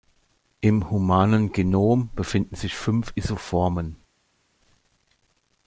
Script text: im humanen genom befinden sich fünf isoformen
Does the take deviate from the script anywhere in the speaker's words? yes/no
no